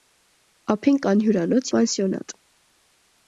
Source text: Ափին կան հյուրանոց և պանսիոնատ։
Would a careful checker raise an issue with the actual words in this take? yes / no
yes